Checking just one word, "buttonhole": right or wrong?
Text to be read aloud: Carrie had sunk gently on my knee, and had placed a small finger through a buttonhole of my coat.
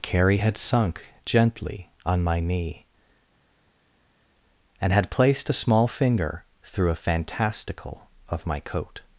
wrong